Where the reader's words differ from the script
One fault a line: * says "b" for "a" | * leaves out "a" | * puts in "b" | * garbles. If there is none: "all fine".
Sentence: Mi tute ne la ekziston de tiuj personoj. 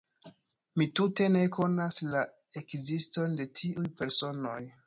* puts in "konas"